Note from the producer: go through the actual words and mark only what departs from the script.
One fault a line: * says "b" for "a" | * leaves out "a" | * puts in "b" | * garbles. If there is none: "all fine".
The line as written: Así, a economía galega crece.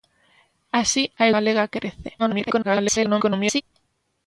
* leaves out "economía"
* garbles